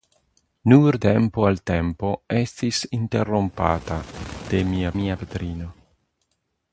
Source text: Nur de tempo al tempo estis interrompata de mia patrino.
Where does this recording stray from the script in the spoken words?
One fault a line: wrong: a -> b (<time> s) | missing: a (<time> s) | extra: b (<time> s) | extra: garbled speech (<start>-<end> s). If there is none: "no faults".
missing: de (1.0 s)
extra: mia (5.0 s)